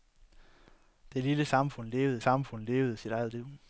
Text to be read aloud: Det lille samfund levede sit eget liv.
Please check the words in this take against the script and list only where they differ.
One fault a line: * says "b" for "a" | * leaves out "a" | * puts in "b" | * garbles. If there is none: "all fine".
* puts in "samfund levede"